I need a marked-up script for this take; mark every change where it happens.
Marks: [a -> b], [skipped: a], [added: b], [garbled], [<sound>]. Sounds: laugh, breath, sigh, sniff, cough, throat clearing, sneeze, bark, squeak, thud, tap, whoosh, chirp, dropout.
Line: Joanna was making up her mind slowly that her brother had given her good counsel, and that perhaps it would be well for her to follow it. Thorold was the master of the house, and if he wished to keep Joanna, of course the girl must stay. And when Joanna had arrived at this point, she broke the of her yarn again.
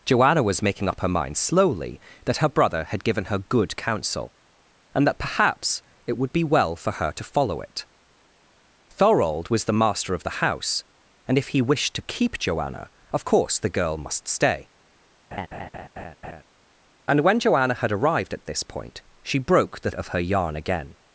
Joanna was making up her mind slowly that her brother had given her good counsel, and that perhaps it would be well for her to follow it. Thorold was the master of the house, and if he wished to keep Joanna, of course the girl must stay. [laugh] And when Joanna had arrived at this point, she broke the of her yarn again.